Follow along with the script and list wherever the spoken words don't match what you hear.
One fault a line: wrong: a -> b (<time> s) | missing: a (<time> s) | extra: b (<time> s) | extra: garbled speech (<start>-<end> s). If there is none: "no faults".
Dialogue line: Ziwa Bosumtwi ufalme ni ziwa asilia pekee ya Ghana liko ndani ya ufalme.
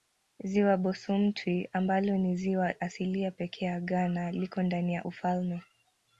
wrong: ufalme -> ambalo (1.7 s)